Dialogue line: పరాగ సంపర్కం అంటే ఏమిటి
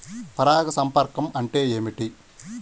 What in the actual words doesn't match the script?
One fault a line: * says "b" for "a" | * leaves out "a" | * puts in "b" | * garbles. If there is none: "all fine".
all fine